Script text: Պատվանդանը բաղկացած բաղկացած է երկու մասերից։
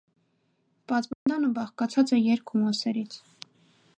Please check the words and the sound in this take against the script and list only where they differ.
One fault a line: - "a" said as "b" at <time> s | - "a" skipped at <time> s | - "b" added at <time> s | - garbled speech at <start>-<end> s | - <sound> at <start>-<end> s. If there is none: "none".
- dropout at 1.1-1.3 s
- "բաղկացած" skipped at 2.1 s